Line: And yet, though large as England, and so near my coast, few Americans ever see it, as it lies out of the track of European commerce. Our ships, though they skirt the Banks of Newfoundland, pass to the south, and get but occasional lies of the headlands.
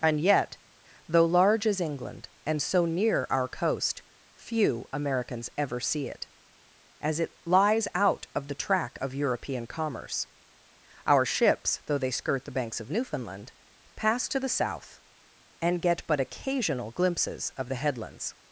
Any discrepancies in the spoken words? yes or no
yes